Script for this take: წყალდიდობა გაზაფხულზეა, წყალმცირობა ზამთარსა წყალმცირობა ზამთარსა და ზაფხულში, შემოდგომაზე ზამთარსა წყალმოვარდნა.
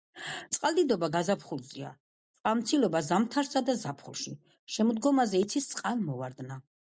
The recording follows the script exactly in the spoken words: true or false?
false